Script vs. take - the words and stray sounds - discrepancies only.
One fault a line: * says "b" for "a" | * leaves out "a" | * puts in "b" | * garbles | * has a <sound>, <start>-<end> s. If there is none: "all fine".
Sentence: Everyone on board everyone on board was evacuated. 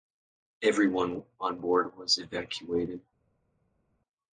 * leaves out "everyone on board"